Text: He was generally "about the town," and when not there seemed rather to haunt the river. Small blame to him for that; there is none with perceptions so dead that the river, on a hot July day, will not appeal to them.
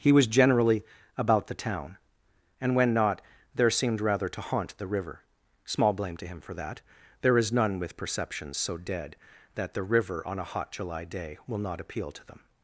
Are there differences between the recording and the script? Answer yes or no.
no